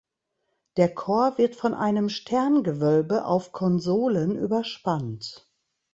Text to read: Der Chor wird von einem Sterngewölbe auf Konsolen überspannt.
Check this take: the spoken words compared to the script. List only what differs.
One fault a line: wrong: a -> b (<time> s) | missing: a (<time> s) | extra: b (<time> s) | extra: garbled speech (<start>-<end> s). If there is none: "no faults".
no faults